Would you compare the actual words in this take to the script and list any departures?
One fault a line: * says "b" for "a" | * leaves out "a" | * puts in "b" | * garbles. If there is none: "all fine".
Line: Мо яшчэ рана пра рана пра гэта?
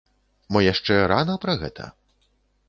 * leaves out "рана пра"